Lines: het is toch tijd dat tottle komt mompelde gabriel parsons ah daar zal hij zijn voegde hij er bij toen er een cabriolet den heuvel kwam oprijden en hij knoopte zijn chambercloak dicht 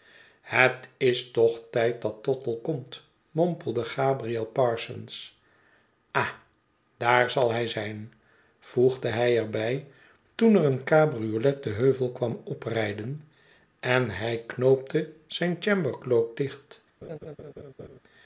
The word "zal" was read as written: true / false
true